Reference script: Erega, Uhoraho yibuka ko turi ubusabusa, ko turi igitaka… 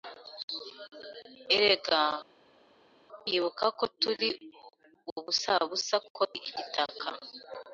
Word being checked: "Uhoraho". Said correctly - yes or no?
no